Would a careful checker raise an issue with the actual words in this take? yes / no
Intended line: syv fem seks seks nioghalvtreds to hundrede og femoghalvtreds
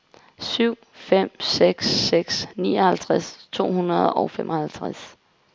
no